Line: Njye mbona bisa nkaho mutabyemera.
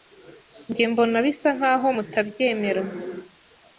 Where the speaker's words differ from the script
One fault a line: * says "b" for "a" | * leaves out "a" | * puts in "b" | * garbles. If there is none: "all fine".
all fine